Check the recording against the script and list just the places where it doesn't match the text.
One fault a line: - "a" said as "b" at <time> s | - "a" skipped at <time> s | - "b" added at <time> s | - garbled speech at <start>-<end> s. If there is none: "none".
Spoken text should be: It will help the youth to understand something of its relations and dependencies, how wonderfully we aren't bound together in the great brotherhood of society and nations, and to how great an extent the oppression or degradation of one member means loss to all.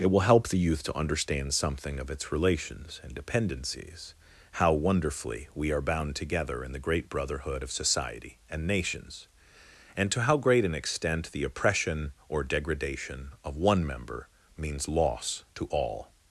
- "aren't" said as "are" at 5.7 s